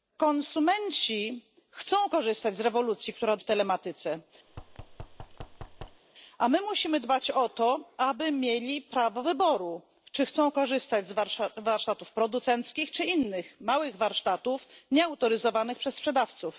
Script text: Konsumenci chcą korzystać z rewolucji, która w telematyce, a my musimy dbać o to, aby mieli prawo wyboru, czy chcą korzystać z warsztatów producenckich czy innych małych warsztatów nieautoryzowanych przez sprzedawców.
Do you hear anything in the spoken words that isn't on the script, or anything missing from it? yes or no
no